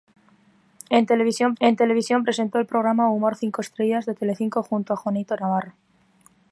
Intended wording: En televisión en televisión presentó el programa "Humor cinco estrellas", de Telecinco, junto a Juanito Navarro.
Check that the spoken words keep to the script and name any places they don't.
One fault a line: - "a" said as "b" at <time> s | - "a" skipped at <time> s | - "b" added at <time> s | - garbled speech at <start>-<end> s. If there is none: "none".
none